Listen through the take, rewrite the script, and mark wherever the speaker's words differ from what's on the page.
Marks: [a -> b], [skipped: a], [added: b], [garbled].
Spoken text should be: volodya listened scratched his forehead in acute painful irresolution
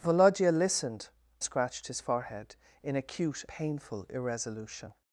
volodya listened scratched his forehead in acute painful irresolution